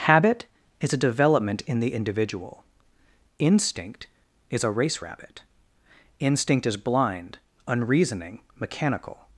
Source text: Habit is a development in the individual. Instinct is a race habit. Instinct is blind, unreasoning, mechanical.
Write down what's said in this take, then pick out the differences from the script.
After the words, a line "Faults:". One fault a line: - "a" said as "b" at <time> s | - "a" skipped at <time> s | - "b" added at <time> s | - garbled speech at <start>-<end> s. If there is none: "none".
Habit is a development in the individual. Instinct is a race rabbit. Instinct is blind, unreasoning, mechanical.
Faults:
- "habit" said as "rabbit" at 5.0 s